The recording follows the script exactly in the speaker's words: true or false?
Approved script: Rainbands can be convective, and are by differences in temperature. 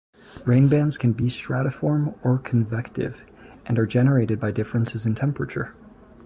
false